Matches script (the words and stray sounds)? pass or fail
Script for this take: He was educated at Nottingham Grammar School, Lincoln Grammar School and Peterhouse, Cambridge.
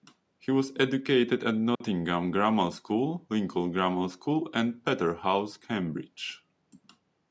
fail